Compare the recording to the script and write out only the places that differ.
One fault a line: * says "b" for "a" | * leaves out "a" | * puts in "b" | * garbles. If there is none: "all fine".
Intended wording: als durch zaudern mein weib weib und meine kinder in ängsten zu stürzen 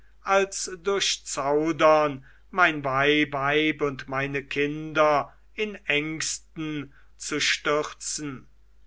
all fine